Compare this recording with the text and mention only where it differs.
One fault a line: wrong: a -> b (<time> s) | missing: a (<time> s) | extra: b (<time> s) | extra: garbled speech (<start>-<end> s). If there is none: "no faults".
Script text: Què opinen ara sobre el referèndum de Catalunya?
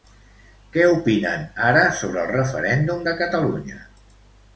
no faults